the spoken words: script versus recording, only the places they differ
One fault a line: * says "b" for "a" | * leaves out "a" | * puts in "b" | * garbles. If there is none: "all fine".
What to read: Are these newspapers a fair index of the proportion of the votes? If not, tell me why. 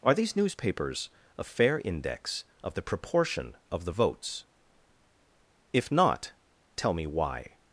all fine